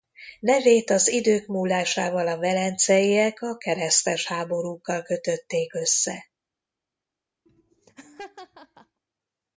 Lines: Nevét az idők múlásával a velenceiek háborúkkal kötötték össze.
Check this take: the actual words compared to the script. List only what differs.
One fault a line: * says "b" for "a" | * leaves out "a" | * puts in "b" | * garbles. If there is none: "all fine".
* puts in "a keresztes"